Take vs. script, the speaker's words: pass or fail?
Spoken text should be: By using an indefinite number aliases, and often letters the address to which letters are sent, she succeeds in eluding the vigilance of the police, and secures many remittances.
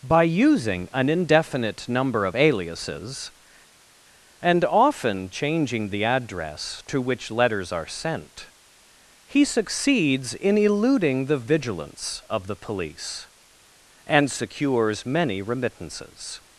fail